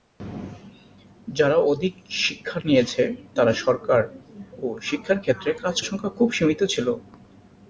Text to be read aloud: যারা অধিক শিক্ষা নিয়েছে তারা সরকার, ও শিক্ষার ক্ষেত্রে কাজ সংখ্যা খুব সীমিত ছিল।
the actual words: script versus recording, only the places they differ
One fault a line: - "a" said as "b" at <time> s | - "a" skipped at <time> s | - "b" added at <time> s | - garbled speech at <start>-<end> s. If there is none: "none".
none